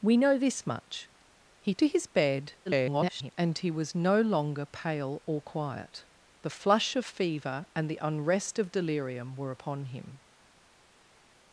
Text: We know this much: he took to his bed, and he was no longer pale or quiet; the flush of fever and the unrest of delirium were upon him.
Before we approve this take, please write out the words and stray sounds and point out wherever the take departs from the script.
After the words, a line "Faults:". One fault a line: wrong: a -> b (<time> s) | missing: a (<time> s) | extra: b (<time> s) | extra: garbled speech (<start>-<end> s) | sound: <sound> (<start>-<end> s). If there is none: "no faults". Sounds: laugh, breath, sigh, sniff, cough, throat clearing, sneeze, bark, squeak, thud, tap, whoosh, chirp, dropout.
We know this much: he to his bed, [garbled] and he was no longer pale or quiet; the flush of fever and the unrest of delirium were upon him.
Faults:
missing: took (1.8 s)
extra: garbled speech (2.7-3.3 s)